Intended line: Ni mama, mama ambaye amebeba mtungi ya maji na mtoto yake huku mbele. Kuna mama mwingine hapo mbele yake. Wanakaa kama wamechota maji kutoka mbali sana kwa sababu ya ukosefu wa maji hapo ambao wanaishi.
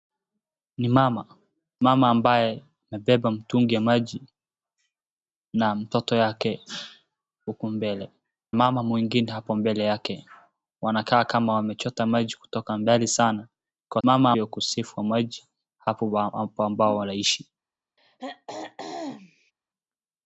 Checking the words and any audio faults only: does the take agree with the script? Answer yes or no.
no